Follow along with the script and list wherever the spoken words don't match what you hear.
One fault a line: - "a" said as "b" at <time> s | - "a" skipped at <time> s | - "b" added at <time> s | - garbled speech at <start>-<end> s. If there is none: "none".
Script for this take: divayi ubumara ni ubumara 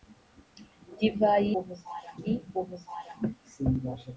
none